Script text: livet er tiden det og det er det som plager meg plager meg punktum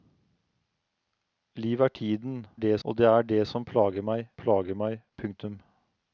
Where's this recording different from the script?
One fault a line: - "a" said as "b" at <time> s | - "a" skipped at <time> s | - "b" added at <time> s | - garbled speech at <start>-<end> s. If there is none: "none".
none